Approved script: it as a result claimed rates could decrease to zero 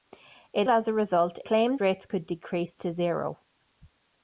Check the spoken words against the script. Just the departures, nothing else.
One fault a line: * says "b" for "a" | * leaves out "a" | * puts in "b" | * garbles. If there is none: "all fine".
all fine